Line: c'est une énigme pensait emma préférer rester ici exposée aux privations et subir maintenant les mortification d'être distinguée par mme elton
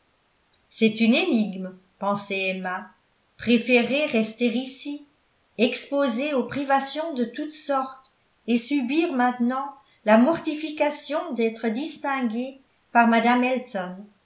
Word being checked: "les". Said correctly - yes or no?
no